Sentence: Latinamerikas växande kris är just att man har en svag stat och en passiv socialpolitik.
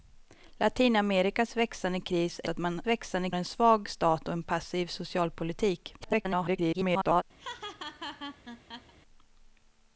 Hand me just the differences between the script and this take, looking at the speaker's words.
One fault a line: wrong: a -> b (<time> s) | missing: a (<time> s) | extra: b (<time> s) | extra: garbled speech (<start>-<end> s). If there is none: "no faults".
missing: just (2.5 s)
wrong: har -> växande (2.9 s)
extra: garbled speech (6.0-7.2 s)